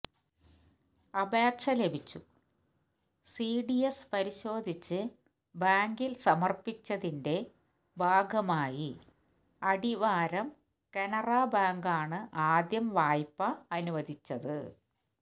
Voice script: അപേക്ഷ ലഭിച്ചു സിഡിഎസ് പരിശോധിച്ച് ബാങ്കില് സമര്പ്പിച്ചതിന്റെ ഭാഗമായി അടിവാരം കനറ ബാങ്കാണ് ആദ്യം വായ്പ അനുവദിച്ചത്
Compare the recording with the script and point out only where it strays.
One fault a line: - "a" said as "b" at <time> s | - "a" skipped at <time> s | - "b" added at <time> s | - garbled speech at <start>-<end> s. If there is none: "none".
none